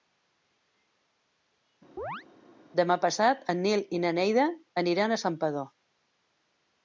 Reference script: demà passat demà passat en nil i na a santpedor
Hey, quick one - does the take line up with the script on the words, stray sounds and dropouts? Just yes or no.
no